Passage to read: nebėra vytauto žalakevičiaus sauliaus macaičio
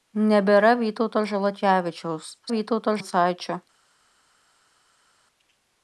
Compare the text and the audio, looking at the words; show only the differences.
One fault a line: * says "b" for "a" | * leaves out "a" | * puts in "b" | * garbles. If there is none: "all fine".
* says "vytauto" for "sauliaus"